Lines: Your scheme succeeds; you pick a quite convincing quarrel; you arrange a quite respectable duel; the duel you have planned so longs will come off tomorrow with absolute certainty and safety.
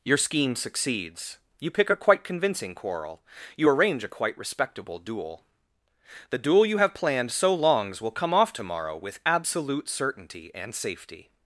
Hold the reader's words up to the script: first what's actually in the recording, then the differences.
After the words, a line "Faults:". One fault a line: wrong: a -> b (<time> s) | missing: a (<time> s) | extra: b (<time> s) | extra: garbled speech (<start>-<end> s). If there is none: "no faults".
Your scheme succeeds; you pick a quite convincing quarrel; you arrange a quite respectable duel; the duel you have planned so longs will come off tomorrow with absolute certainty and safety.
Faults:
no faults